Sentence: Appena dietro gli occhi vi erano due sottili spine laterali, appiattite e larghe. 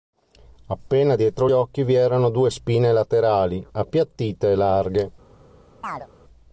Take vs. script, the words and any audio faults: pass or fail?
fail